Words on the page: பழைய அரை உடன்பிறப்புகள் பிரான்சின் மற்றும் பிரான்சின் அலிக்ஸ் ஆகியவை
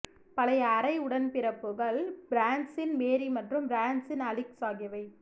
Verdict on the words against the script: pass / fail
fail